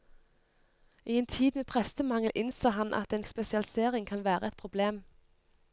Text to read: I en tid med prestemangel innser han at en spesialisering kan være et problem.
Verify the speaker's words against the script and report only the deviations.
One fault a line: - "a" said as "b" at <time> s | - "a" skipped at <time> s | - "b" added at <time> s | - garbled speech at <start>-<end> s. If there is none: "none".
none